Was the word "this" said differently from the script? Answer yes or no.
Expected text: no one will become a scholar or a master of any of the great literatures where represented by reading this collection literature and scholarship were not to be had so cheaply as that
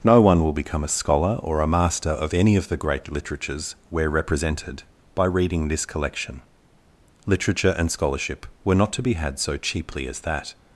no